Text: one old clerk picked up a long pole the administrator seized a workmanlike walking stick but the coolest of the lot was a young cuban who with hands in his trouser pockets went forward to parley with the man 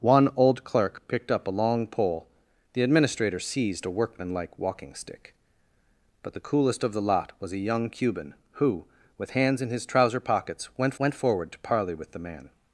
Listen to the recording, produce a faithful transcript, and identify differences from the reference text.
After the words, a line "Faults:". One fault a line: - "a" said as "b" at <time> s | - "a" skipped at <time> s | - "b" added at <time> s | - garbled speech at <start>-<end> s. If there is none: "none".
one old clerk picked up a long pole the administrator seized a workmanlike walking stick but the coolest of the lot was a young cuban who with hands in his trouser pockets went went forward to parley with the man
Faults:
- "went" added at 11.0 s